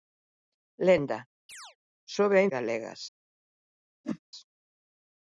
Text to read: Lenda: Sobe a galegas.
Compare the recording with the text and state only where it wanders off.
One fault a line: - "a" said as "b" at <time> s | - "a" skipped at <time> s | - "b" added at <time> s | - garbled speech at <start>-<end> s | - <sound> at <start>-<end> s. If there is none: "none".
- chirp at 1.5-1.8 s
- whoosh at 4.0-4.2 s